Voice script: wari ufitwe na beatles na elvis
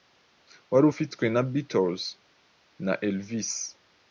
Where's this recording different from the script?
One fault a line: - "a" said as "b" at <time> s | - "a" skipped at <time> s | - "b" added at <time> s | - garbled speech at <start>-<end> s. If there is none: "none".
none